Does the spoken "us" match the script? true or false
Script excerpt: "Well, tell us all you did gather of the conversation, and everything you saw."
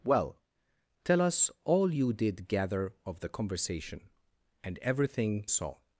true